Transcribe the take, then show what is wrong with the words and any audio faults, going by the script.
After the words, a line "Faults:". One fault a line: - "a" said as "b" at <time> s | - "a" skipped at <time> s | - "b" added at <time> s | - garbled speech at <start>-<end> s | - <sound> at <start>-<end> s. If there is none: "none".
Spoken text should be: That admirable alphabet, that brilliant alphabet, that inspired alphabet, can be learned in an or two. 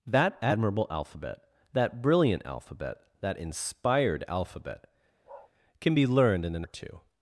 That admirable alphabet, that brilliant alphabet, that inspired alphabet, can be learned in an or two.
Faults:
- bark at 5.2-5.5 s